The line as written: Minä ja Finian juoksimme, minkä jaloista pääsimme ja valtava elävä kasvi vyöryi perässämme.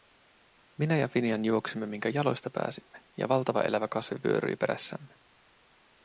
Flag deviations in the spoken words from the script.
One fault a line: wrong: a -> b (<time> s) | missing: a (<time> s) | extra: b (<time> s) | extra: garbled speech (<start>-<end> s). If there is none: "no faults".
no faults